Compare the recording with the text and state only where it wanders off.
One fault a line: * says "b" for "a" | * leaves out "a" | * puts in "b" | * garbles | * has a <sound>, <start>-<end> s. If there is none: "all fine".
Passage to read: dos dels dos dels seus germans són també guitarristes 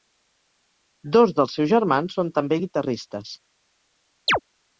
* leaves out "dos dels"
* has a chirp, 4.3-4.4 s